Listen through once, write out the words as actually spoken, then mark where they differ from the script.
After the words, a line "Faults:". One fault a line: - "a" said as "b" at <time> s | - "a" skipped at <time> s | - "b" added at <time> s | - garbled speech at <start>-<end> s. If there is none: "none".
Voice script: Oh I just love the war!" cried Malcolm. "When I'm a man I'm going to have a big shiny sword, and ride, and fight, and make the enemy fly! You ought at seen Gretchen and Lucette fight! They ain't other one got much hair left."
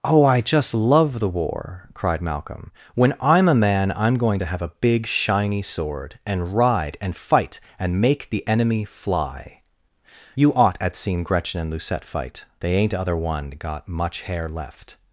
Oh I just love the war!" cried Malcolm. "When I'm a man I'm going to have a big shiny sword, and ride, and fight, and make the enemy fly! You ought at seen Gretchen and Lucette fight! They ain't other one got much hair left."
Faults:
none